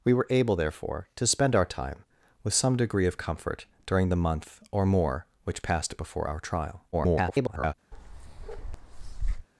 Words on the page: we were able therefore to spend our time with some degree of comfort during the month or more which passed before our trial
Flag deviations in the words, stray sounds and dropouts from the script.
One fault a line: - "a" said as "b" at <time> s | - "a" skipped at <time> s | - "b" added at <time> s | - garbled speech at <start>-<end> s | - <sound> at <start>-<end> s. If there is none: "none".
- garbled speech at 6.9-7.7 s
- bark at 7.9-9.5 s